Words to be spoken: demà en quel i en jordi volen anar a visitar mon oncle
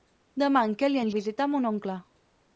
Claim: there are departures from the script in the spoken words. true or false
true